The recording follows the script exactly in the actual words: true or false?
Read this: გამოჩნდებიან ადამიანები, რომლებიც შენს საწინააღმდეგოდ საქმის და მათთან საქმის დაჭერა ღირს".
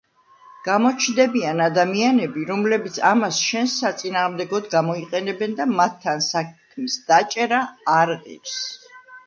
false